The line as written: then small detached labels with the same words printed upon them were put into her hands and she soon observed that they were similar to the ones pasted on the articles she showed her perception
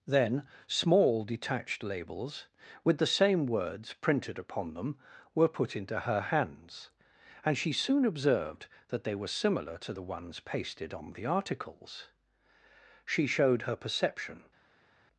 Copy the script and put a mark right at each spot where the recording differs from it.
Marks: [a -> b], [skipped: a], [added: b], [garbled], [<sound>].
then small detached labels with the same words printed upon them were put into her hands and she soon observed that they were similar to the ones pasted on the articles she showed her perception